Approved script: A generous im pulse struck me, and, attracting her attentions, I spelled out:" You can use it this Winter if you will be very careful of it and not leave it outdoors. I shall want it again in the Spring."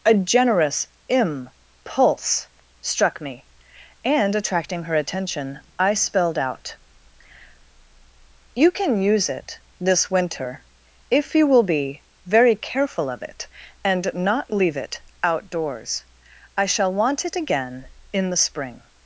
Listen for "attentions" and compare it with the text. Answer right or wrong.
wrong